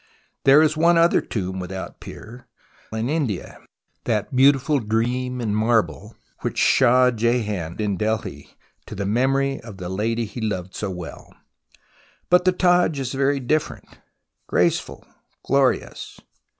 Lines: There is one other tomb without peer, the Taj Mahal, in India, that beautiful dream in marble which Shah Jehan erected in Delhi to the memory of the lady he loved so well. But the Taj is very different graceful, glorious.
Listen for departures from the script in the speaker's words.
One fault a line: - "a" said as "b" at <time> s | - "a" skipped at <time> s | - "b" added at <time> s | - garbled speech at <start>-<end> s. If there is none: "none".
- "the Taj Mahal" skipped at 2.5 s
- "erected" skipped at 7.8 s